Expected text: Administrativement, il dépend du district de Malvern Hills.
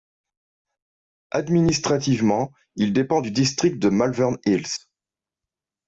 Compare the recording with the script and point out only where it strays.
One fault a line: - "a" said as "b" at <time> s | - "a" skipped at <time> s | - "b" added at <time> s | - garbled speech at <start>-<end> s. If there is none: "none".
none